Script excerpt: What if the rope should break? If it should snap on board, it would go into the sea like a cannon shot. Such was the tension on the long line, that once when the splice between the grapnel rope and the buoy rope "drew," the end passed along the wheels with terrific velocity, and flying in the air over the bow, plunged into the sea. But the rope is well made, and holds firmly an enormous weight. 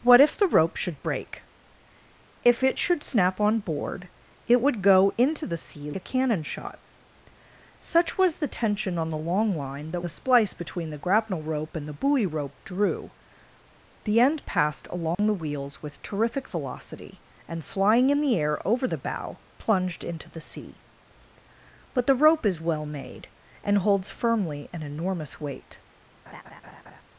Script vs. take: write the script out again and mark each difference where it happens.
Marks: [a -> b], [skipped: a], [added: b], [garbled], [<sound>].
What if the rope should break? If it should snap on board, it would go into the sea [skipped: like] a cannon shot. Such was the tension on the long line, that [skipped: once when] the splice between the grapnel rope and the buoy rope "drew," the end passed along [dropout] the wheels with terrific velocity, and flying in the air over the bow, plunged into the sea. But the rope is well made, and holds firmly an enormous weight. [laugh]